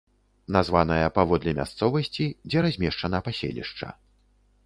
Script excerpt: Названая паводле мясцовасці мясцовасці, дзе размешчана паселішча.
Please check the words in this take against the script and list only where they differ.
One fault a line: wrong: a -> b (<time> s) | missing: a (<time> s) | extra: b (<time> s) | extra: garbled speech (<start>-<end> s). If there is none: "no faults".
missing: мясцовасці (2.3 s)